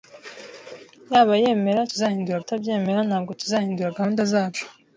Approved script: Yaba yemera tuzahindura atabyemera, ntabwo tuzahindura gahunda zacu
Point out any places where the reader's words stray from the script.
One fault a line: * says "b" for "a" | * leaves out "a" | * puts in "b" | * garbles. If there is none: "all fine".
all fine